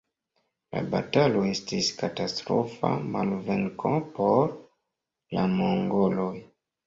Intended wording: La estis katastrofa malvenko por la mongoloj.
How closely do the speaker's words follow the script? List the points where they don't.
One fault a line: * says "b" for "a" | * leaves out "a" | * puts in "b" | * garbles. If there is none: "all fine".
* puts in "batalo"